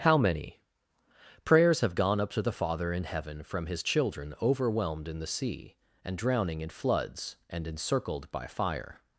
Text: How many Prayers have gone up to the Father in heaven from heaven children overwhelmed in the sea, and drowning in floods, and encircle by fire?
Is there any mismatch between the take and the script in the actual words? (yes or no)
yes